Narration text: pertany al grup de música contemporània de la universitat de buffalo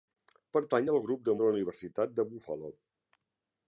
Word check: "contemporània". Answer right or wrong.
wrong